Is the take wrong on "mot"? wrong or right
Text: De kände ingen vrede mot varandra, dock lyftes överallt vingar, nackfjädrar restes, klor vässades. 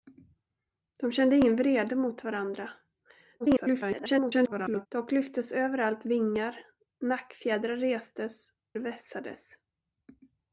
right